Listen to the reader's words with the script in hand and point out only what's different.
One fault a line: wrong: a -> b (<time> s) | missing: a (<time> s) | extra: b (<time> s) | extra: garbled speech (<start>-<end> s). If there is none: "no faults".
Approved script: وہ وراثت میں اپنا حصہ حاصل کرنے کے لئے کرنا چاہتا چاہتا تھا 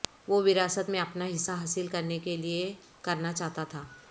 missing: چاہتا (3.6 s)